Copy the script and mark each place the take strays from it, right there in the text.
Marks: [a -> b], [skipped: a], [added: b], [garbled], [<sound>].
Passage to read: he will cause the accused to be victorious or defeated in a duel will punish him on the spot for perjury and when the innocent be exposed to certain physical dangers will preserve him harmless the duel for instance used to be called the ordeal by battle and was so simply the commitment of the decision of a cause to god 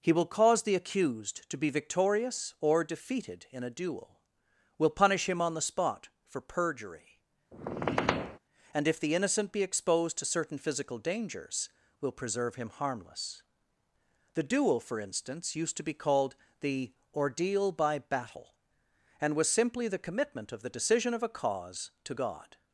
he will cause the accused to be victorious or defeated in a duel will punish him on the spot for perjury [squeak] and [when -> if] the innocent be exposed to certain physical dangers will preserve him harmless the duel for instance used to be called the ordeal by battle and was [skipped: so] simply the commitment of the decision of a cause to god